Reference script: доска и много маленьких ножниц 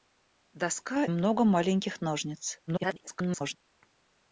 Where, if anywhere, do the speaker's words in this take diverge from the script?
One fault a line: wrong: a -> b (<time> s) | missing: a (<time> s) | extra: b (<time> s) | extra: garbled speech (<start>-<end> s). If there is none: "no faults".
missing: и (1.1 s)
extra: garbled speech (2.7-3.6 s)